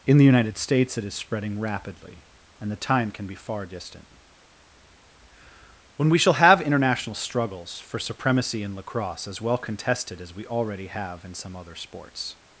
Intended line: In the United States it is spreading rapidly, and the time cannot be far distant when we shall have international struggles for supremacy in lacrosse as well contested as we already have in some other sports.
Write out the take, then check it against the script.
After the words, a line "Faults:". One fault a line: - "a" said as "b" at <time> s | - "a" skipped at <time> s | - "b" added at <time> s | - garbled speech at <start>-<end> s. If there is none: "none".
In the United States it is spreading rapidly, and the time can be far distant when we shall have international struggles for supremacy in lacrosse as well contested as we already have in some other sports.
Faults:
- "cannot" said as "can" at 3.1 s